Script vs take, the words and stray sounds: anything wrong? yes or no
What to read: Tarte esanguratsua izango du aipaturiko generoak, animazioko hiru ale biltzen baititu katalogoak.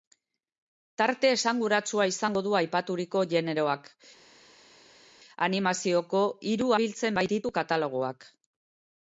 yes